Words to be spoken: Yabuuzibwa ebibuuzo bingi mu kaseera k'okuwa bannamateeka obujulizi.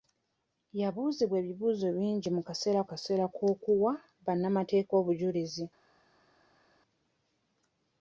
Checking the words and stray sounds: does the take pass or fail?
fail